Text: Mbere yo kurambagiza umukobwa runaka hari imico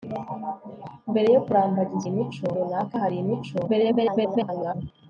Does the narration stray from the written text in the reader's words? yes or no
yes